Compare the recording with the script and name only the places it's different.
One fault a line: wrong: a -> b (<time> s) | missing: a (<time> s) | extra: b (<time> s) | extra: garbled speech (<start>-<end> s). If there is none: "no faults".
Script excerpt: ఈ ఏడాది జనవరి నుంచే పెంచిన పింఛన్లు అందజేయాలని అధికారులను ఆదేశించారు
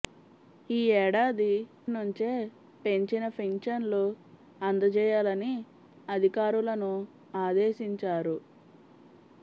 missing: జనవరి (1.5 s)